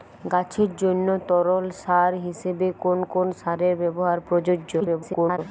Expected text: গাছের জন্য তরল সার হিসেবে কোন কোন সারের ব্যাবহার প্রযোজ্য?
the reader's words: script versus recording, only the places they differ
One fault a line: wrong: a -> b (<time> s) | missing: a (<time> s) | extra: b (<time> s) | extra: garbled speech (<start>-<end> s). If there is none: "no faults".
extra: garbled speech (4.8-5.4 s)